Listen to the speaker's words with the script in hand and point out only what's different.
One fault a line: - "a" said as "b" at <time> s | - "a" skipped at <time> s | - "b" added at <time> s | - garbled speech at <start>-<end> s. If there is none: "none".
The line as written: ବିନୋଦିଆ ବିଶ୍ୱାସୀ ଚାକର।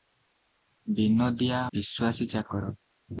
none